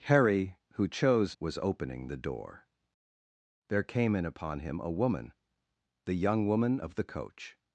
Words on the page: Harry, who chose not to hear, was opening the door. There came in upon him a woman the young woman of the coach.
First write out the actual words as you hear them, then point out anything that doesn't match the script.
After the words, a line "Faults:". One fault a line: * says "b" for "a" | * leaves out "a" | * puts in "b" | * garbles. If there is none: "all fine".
Harry, who chose was opening the door. There came in upon him a woman the young woman of the coach.
Faults:
* leaves out "not to hear"